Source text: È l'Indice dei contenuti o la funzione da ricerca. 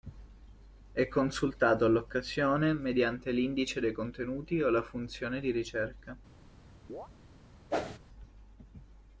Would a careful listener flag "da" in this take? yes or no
yes